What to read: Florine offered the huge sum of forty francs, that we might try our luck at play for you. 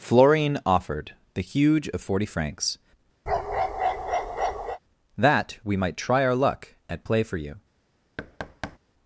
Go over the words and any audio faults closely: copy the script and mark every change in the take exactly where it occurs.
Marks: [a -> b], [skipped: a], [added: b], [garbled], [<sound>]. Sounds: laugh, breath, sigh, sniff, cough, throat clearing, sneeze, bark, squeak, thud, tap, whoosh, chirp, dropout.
Florine offered the huge [skipped: sum] of forty francs, [bark] that we might try our luck at play for you. [thud]